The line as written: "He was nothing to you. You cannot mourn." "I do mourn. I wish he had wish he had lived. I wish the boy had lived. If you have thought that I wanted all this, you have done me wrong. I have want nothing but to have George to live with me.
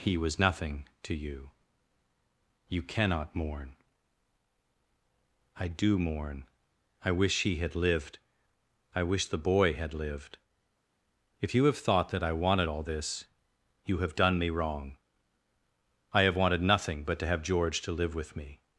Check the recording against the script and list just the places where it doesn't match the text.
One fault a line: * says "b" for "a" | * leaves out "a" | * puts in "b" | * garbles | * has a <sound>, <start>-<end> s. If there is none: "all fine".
* leaves out "wish he had"
* says "wanted" for "want"